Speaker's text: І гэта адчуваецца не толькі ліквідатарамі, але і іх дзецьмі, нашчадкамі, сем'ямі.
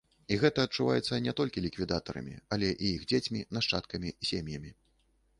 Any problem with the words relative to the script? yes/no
no